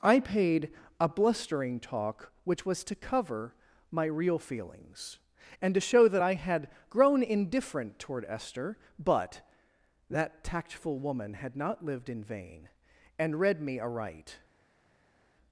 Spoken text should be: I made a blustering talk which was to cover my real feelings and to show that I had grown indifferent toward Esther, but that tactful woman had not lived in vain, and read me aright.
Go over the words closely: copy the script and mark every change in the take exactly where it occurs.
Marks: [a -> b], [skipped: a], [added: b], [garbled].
I [made -> paid] a blustering talk which was to cover my real feelings and to show that I had grown indifferent toward Esther, but that tactful woman had not lived in vain, and read me aright.